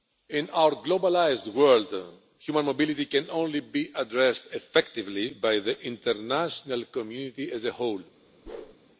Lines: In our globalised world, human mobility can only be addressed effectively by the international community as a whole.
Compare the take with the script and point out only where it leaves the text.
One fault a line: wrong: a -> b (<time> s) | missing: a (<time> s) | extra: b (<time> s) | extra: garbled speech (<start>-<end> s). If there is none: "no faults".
no faults